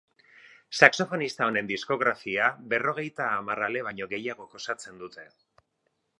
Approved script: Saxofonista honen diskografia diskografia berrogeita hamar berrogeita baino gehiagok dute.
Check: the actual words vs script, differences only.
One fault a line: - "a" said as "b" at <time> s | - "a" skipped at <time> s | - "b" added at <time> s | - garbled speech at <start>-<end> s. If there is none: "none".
- "diskografia" skipped at 2.5 s
- "berrogeita" said as "ale" at 3.7 s
- "osatzen" added at 4.6 s